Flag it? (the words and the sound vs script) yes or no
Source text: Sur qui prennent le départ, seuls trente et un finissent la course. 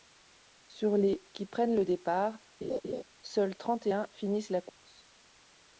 yes